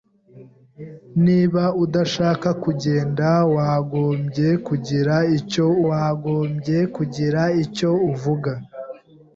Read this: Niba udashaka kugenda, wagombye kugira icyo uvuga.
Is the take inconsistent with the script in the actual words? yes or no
yes